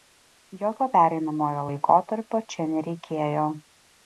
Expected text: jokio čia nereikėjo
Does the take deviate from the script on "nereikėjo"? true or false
false